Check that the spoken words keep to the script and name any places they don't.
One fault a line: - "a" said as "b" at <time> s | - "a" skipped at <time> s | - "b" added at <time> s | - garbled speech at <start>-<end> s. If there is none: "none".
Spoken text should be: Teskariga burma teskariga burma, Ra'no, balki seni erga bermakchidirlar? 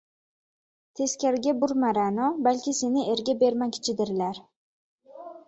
- "teskariga burma" skipped at 1.9 s